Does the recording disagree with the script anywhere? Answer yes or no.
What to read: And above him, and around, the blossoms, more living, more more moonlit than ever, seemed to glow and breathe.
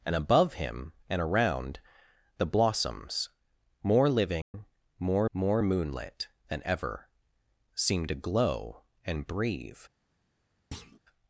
no